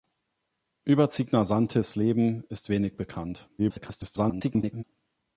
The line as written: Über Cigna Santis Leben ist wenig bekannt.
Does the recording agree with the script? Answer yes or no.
no